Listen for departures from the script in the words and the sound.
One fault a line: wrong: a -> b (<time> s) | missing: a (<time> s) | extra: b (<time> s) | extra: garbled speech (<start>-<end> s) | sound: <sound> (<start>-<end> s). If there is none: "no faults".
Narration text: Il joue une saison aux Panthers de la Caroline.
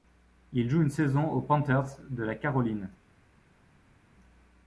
no faults